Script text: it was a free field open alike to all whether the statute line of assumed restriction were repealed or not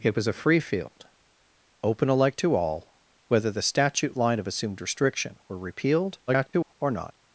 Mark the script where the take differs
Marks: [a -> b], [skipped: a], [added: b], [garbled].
it was a free field open alike to all whether the statute line of assumed restriction were repealed [garbled] or not